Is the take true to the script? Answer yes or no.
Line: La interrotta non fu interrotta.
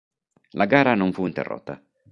no